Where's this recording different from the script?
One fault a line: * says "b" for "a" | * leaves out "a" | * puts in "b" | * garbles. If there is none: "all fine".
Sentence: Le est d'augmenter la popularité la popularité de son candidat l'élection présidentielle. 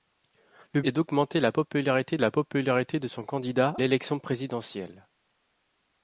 all fine